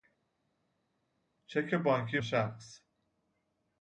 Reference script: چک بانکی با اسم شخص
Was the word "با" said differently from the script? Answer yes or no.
yes